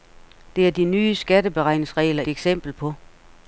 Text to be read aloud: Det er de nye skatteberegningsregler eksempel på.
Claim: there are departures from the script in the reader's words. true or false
false